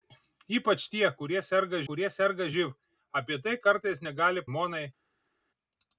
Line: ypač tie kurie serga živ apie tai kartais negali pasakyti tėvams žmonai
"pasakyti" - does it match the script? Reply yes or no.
no